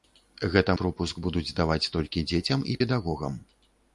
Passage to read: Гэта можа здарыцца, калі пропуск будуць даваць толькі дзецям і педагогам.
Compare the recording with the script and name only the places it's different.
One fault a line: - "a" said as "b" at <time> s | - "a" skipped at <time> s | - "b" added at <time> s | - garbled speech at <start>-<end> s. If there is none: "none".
- "можа здарыцца калі" skipped at 0.8 s